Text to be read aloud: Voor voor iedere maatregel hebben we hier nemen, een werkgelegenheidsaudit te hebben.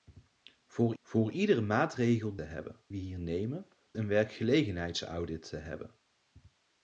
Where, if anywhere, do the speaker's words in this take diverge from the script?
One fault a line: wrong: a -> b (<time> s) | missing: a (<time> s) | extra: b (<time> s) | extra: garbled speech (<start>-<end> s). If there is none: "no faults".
no faults